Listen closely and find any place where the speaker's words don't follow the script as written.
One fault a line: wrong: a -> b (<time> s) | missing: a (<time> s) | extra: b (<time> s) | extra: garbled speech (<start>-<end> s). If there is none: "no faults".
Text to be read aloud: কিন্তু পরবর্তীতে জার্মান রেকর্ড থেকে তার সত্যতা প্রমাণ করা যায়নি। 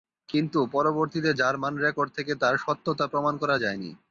no faults